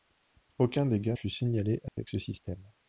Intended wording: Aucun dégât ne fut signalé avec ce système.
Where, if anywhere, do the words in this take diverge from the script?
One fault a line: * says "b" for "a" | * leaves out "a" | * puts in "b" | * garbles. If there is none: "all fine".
* leaves out "ne"